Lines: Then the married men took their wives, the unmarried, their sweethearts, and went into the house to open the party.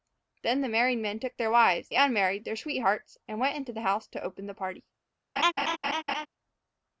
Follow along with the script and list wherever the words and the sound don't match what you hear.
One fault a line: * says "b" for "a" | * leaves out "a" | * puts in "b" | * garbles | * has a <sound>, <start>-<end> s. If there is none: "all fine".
* has a laugh, 5.4-6.3 s